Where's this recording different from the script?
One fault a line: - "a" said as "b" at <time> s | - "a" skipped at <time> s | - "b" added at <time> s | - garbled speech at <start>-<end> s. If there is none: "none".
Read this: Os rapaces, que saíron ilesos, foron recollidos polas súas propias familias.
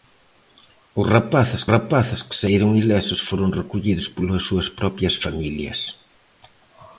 - "rapaces" added at 1.7 s